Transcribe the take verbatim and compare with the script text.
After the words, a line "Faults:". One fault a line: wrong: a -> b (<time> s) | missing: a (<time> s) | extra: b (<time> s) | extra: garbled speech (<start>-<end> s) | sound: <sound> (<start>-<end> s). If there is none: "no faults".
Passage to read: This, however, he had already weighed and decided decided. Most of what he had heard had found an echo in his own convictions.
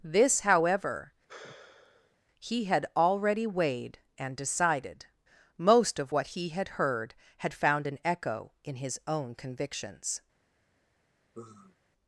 This, however, he had already weighed and decided. Most of what he had heard had found an echo in his own convictions.
Faults:
sound: sigh (1.3-2.2 s)
missing: decided (5.1 s)
sound: sigh (11.3-11.8 s)